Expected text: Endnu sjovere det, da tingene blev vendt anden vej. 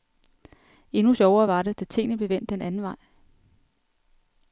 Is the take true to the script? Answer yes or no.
no